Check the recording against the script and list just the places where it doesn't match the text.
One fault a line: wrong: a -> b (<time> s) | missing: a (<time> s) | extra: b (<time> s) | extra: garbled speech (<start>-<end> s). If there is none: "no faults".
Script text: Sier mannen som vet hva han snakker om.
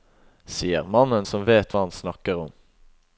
no faults